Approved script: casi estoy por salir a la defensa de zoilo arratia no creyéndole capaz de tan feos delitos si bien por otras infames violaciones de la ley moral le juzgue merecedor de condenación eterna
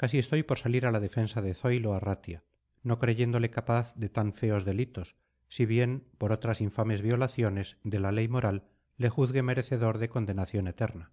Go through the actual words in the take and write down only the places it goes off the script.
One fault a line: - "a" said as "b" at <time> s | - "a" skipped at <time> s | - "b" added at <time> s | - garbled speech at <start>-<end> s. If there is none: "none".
none